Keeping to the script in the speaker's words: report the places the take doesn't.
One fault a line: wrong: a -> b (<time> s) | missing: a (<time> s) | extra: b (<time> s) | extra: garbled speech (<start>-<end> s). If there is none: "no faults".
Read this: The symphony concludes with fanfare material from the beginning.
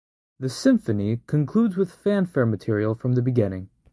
no faults